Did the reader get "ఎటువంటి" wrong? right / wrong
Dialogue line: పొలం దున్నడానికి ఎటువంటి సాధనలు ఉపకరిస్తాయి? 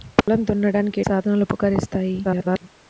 wrong